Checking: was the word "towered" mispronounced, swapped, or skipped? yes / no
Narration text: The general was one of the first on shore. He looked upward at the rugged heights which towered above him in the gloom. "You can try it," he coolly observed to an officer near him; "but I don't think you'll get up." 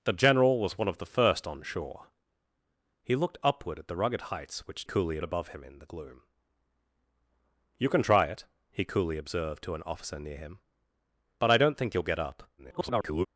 yes